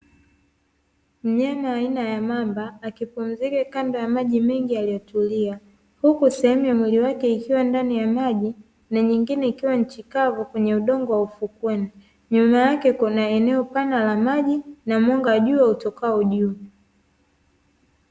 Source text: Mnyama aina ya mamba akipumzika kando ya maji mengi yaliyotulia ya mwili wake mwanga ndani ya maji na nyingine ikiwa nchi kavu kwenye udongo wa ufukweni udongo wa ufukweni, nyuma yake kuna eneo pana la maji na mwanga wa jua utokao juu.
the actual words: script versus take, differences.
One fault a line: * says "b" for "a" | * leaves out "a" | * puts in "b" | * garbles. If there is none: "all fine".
* puts in "huku sehemu"
* says "ikiwa" for "mwanga"
* leaves out "udongo wa ufukweni"